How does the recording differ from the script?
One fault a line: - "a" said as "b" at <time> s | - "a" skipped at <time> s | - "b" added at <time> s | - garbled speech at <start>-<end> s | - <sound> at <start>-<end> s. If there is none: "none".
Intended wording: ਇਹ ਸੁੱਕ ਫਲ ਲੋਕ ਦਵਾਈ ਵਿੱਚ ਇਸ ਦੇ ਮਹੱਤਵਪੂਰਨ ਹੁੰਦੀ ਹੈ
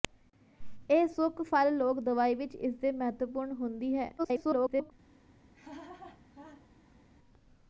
- garbled speech at 4.2-4.9 s
- laugh at 5.5-7.0 s